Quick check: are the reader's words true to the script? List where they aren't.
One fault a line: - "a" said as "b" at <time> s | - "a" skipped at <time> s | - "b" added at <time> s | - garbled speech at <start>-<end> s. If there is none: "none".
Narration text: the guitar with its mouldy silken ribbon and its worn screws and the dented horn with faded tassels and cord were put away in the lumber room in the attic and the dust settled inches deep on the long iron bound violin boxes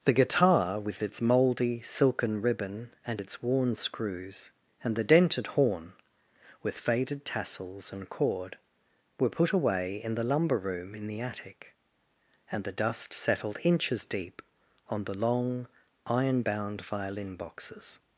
none